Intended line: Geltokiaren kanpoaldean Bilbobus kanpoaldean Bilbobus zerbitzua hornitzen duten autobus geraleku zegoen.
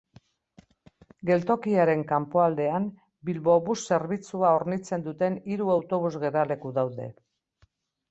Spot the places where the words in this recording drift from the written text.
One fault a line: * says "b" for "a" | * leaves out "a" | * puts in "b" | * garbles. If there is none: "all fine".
* leaves out "kanpoaldean Bilbobus"
* puts in "hiru"
* says "daude" for "zegoen"